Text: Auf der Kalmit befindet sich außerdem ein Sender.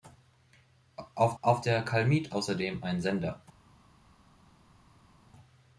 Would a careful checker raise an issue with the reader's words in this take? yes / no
yes